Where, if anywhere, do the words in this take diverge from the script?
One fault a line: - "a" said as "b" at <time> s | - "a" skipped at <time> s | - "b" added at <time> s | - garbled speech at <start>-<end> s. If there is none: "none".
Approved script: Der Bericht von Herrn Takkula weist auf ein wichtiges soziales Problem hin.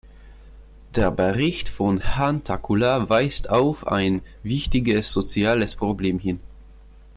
none